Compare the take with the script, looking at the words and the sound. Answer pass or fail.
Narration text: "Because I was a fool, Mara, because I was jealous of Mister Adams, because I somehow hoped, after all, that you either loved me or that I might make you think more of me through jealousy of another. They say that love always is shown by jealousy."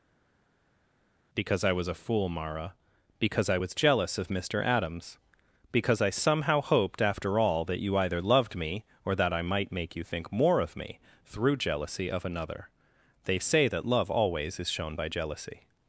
pass